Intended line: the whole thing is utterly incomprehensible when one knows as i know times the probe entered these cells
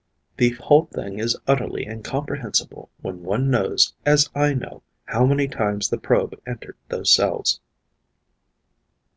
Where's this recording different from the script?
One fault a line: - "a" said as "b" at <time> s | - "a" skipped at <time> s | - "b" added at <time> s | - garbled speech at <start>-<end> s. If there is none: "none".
- "how many" added at 5.0 s
- "these" said as "those" at 6.9 s